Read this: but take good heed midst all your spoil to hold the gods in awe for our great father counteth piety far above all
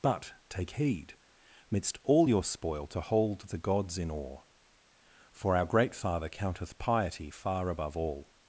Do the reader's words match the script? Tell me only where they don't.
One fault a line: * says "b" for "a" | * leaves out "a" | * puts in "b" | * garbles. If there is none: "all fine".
* leaves out "good"